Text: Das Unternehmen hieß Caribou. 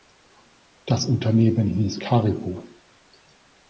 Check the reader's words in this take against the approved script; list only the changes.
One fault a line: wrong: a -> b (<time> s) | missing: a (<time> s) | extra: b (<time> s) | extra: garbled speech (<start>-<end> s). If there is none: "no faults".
no faults